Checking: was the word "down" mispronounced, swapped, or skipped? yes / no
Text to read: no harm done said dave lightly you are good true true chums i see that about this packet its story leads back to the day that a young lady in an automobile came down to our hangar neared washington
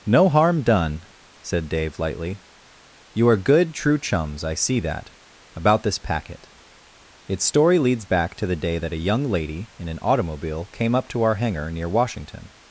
yes